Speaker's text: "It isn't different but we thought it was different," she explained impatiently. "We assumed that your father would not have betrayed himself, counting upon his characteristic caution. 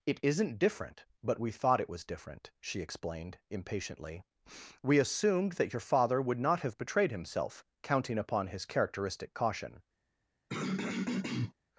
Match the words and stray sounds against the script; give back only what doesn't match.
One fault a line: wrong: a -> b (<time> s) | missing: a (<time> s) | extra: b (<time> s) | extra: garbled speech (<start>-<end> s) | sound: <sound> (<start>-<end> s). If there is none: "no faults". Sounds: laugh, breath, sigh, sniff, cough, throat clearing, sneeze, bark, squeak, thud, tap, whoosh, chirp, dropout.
sound: throat clearing (10.5-11.5 s)